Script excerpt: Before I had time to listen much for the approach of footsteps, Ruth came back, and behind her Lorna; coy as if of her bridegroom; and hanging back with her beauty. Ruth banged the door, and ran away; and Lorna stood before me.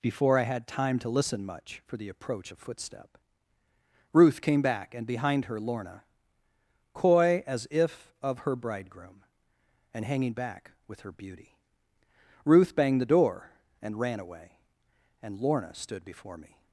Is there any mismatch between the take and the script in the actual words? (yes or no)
yes